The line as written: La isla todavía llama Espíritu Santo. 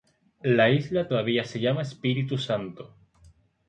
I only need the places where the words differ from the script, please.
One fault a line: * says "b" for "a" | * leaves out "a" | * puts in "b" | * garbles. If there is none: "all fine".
* puts in "se"